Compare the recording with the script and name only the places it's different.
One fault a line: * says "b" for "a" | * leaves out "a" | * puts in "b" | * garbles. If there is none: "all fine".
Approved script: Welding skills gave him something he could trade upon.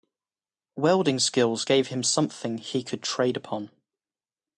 all fine